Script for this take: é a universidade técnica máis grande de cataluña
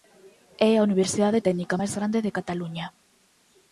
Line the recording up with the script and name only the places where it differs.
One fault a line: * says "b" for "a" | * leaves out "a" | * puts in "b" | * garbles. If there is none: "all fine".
all fine